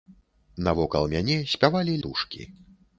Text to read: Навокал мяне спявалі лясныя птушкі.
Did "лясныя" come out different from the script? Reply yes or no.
yes